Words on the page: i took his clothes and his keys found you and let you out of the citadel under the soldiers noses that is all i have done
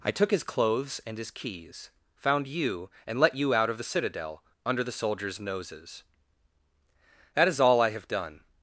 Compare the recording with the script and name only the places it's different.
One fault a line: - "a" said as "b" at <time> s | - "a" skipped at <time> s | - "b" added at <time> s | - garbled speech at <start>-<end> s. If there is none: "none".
none